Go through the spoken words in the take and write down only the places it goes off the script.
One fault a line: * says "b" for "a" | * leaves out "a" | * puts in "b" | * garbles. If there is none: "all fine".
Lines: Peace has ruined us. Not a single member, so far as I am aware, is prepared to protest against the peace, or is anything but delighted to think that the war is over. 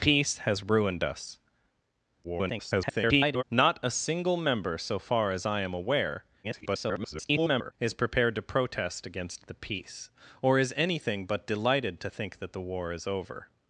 * garbles
* garbles